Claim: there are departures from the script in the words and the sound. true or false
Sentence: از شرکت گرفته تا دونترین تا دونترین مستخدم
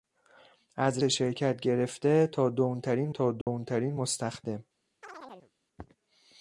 true